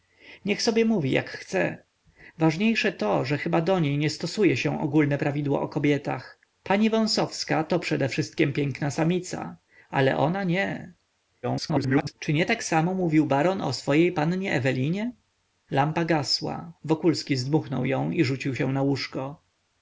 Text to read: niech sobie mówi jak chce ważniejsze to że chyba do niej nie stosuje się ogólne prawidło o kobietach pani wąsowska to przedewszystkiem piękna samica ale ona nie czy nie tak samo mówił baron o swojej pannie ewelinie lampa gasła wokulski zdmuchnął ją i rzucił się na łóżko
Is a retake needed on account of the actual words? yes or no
yes